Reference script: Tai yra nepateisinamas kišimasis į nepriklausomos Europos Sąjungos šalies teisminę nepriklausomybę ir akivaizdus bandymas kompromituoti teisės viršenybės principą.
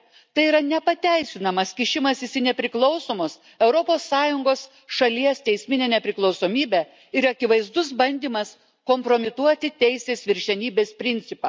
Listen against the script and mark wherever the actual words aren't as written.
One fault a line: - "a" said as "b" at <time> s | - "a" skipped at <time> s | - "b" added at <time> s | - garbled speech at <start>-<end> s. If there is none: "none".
none